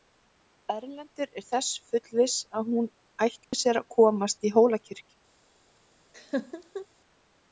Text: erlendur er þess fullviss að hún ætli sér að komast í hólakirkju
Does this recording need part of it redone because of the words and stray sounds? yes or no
yes